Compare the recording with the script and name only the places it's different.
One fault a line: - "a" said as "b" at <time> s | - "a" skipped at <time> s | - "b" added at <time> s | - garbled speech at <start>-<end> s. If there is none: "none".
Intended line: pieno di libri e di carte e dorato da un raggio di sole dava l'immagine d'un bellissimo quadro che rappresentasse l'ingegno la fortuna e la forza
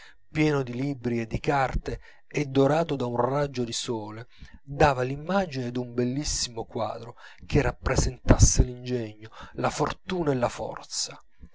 none